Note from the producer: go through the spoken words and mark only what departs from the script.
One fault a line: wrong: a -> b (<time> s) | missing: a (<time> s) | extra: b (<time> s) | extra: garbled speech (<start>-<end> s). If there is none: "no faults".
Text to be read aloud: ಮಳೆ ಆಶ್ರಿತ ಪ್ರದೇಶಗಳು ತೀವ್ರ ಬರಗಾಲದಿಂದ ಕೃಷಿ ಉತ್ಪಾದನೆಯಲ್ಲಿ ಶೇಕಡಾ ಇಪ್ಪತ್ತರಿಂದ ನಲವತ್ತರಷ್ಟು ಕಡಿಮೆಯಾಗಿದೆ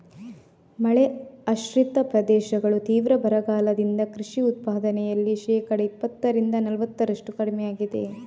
no faults